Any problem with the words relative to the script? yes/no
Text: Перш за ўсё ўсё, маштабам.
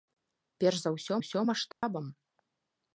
no